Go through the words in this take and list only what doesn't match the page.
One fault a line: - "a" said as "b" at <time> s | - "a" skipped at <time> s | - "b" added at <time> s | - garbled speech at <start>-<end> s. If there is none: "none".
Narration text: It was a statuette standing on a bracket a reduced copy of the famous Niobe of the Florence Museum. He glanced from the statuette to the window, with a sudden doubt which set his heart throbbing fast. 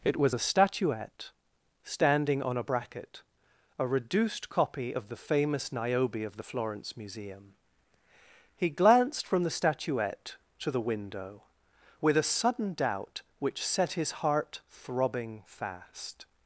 none